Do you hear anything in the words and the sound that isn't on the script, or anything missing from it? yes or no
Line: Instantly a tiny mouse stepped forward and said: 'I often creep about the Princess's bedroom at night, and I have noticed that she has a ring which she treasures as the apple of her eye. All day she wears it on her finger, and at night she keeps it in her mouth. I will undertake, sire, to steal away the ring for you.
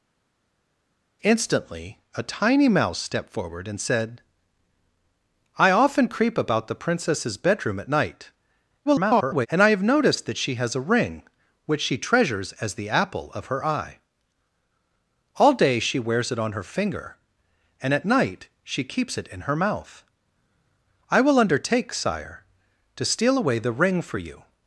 yes